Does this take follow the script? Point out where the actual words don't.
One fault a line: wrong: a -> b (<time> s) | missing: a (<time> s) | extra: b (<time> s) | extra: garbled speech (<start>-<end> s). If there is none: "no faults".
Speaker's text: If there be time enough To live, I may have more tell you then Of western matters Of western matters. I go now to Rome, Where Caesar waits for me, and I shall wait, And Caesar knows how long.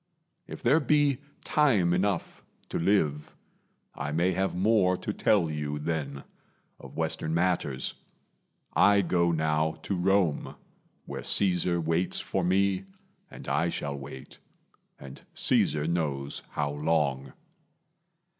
extra: to (5.0 s)
missing: Of western matters (8.0 s)